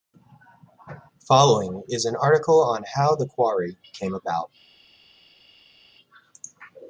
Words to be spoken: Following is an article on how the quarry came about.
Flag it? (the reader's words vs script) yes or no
no